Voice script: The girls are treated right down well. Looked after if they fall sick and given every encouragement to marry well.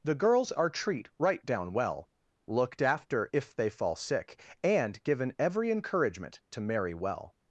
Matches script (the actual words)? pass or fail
fail